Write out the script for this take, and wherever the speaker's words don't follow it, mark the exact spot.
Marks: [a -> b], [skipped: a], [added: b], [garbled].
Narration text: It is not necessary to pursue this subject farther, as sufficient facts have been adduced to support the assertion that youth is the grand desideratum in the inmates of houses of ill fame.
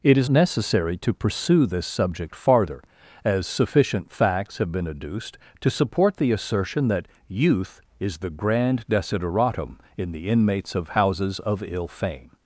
It is [skipped: not] necessary to pursue this subject farther, as sufficient facts have been adduced to support the assertion that youth is the grand desideratum in the inmates of houses of ill fame.